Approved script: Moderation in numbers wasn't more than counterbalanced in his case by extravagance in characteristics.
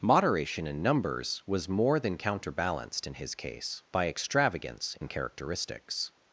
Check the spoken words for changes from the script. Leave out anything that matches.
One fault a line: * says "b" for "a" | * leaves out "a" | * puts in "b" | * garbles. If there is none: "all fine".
* says "was" for "wasn't"